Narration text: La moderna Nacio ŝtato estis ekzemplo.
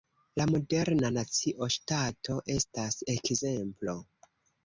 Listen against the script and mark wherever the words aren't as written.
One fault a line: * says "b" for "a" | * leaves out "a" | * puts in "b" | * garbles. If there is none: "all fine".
* says "estas" for "estis"